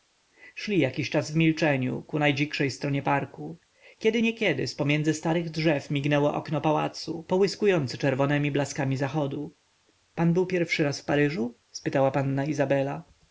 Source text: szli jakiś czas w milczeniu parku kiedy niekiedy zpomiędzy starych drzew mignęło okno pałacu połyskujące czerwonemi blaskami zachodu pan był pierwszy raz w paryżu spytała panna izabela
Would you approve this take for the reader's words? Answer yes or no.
no